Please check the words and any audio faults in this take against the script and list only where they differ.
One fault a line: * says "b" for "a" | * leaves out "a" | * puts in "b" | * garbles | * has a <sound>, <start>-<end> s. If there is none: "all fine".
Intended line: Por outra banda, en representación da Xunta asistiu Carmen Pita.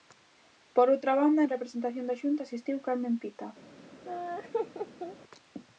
* has a laugh, 4.0-5.2 s